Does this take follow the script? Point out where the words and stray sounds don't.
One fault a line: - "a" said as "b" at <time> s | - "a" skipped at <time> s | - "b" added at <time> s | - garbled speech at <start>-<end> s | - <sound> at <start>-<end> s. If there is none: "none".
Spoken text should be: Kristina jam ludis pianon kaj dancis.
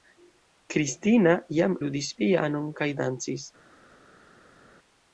none